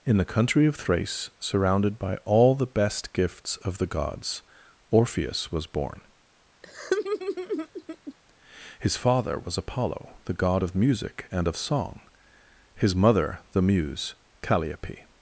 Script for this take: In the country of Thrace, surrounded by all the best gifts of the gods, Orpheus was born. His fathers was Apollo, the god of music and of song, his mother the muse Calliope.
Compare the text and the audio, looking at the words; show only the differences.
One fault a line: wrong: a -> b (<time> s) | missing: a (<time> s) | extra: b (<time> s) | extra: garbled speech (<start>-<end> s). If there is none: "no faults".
wrong: fathers -> father (9.0 s)